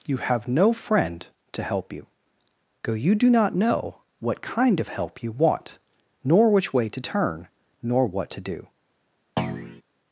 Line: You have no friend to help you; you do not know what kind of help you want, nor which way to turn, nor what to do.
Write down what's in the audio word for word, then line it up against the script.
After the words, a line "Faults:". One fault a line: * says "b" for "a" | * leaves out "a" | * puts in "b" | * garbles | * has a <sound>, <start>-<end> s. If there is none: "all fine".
You have no friend to help you; go you do not know what kind of help you want, nor which way to turn, nor what to do.
Faults:
* puts in "go"
* has a thud, 9.4-9.8 s